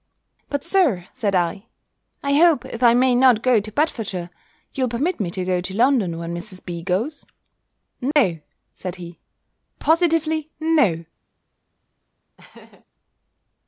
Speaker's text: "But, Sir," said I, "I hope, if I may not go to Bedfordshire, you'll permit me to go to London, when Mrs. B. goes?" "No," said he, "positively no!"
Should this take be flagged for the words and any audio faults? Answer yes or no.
yes